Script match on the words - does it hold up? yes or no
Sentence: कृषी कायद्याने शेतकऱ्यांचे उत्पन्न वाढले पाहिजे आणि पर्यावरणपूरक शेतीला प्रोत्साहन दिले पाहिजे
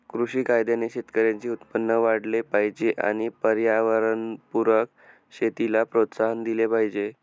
yes